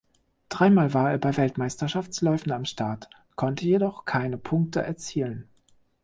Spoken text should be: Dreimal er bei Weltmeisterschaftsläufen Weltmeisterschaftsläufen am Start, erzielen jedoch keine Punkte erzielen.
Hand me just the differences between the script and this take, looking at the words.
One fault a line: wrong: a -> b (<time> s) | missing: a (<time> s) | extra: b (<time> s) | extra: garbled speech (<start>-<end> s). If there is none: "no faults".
extra: war (0.9 s)
missing: Weltmeisterschaftsläufen (2.5 s)
wrong: erzielen -> konnte (3.4 s)